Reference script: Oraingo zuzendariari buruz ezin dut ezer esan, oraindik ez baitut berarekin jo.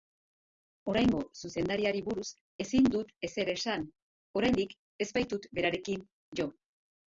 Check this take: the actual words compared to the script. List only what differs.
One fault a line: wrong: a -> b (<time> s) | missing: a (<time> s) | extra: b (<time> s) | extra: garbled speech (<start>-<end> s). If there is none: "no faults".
no faults